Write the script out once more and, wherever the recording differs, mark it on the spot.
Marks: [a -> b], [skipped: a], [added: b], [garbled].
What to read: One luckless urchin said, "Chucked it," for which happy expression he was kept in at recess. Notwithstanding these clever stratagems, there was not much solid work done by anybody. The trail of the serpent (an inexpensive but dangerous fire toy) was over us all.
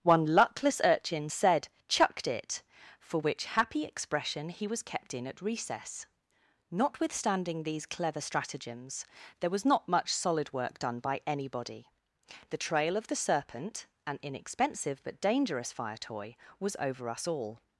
One luckless urchin said, "Chucked it," for which happy expression he was kept in at recess. Notwithstanding these clever stratagems, there was not much solid work done by anybody. The trail of the serpent (an inexpensive but dangerous fire toy) was over us all.